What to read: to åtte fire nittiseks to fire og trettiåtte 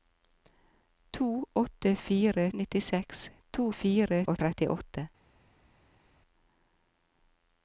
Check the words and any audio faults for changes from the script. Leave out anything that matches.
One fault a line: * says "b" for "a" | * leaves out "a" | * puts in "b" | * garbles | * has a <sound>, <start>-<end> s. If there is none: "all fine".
all fine